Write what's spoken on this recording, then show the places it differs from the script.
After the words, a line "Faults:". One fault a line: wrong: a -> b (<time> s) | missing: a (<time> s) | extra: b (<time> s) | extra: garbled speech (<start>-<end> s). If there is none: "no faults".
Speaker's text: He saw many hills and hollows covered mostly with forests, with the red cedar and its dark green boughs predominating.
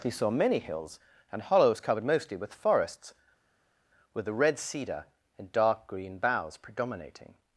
He saw many hills and hollows covered mostly with forests, with the red cedar and dark green boughs predominating.
Faults:
missing: its (5.5 s)